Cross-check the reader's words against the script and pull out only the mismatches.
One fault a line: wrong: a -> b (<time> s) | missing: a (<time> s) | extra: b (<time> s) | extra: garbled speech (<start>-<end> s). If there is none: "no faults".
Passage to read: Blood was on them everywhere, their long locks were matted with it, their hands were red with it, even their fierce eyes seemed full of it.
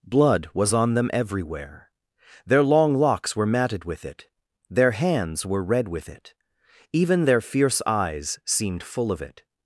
no faults